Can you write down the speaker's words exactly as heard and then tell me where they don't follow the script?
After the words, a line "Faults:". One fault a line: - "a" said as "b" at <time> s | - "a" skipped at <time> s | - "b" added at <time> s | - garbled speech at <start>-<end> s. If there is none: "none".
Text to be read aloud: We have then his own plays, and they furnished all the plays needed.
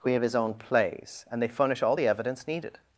We have his own plays, and they furnish all the evidence needed.
Faults:
- "then" skipped at 0.2 s
- "furnished" said as "furnish" at 1.5 s
- "plays" said as "evidence" at 2.1 s